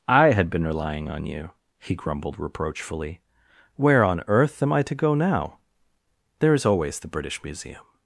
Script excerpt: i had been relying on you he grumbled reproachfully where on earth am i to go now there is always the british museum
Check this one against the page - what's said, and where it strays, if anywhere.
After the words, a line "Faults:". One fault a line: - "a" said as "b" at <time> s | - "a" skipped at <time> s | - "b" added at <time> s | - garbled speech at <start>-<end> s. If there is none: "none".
i had been relying on you he grumbled reproachfully where on earth am i to go now there is always the british museum
Faults:
none